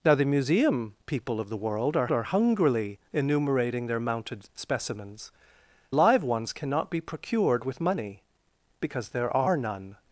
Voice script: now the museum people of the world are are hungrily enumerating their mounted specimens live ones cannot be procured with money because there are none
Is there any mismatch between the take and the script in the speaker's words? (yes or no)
no